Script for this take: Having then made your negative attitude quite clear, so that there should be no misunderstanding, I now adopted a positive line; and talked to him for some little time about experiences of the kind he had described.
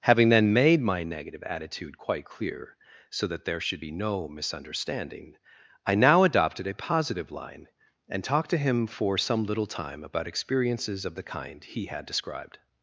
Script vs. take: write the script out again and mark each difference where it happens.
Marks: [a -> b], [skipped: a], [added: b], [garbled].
Having then made [your -> my] negative attitude quite clear, so that there should be no misunderstanding, I now adopted a positive line; and talked to him for some little time about experiences of the kind he had described.